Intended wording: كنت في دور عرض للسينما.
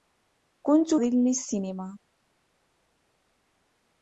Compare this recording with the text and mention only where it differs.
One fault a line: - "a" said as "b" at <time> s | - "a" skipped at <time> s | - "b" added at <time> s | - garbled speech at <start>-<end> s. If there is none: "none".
- "في دور عرض" skipped at 0.9 s